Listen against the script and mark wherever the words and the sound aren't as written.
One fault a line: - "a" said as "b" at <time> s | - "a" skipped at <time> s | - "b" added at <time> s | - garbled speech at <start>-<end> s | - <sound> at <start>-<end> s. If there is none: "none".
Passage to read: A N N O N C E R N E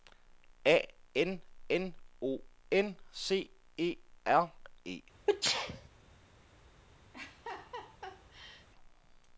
- "N" skipped at 4.5 s
- sneeze at 5.3-5.9 s
- laugh at 7.1-8.7 s